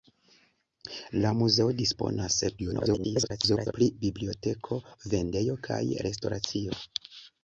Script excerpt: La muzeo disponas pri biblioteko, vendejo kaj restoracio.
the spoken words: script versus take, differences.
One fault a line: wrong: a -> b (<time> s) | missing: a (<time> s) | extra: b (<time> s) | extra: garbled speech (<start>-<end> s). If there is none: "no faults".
extra: garbled speech (2.6-3.7 s)